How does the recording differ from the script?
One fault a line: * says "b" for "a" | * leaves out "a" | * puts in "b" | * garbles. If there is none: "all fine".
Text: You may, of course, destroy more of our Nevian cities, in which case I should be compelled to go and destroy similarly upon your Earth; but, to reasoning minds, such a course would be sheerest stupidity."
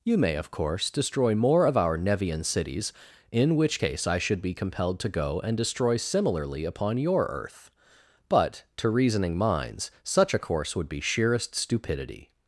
all fine